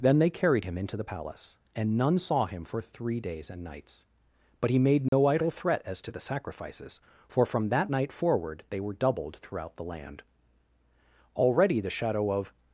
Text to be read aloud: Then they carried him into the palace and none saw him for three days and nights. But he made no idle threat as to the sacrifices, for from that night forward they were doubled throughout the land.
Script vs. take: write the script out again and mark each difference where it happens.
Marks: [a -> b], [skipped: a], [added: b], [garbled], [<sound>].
Then they carried him into the palace and none saw him for three days and nights. But he made no [dropout] idle threat as to the sacrifices, for from that night forward they were doubled throughout the land. [added: Already the shadow of]